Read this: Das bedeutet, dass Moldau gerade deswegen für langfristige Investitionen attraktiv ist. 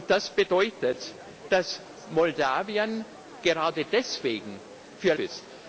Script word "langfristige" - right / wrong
wrong